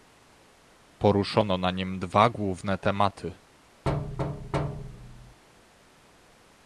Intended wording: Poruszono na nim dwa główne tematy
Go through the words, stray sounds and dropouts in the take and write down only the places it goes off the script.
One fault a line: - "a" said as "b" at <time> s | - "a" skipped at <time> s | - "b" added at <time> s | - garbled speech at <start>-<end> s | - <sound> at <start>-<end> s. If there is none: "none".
- thud at 3.8-5.4 s